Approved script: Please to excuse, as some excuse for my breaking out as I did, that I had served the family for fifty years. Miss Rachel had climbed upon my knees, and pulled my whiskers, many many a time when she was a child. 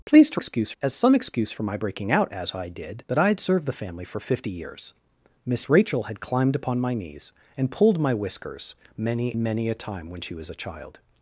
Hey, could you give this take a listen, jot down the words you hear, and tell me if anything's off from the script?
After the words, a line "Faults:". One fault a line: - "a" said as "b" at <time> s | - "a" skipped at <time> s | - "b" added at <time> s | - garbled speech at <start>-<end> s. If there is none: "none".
Please to excuse, as some excuse for my breaking out as I did, that I had served the family for fifty years. Miss Rachel had climbed upon my knees, and pulled my whiskers, many many a time when she was a child.
Faults:
none